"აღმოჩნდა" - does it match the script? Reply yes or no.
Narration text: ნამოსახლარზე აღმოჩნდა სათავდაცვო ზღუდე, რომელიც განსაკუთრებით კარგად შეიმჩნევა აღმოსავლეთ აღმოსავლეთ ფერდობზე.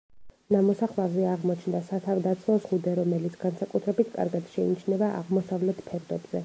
yes